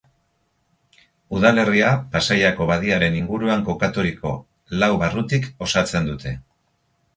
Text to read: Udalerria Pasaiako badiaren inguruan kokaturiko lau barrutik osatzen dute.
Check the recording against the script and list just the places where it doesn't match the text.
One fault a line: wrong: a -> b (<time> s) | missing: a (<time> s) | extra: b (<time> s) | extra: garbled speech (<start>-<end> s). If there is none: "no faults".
no faults